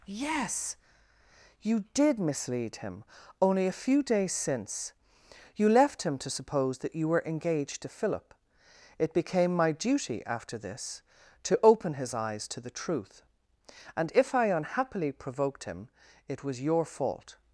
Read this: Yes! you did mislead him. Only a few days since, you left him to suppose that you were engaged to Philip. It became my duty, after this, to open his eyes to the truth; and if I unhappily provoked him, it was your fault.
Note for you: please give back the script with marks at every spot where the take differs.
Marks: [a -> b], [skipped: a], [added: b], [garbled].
Yes! you did mislead him. Only a few days since, you left him to suppose that you were engaged to Philip. It became my duty, after this, to open his eyes to the truth; and if I unhappily provoked him, it was your fault.